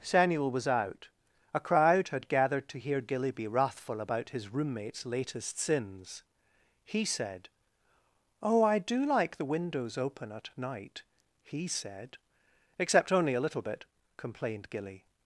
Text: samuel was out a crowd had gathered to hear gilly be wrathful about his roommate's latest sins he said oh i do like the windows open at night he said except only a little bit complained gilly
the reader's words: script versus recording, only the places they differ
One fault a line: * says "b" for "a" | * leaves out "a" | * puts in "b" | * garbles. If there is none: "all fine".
all fine